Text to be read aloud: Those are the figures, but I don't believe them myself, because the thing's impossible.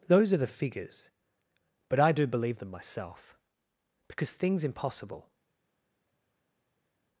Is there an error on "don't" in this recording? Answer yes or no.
yes